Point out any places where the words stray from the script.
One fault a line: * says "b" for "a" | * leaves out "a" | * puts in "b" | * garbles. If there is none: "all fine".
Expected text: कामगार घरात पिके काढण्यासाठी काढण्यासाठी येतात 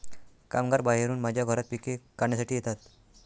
* puts in "बाहेरून माझ्या"
* leaves out "काढण्यासाठी"